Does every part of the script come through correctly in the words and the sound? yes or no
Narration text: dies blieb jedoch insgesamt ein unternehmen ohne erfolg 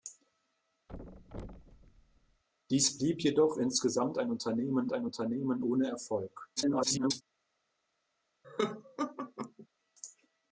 no